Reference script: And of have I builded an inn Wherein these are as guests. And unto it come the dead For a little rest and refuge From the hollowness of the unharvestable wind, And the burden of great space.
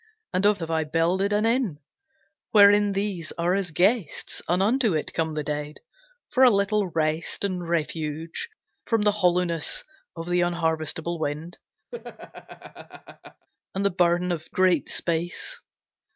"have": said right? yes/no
yes